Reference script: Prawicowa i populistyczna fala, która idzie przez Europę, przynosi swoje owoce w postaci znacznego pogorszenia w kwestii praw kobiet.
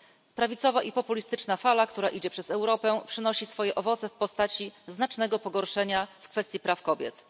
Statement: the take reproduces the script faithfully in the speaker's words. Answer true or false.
true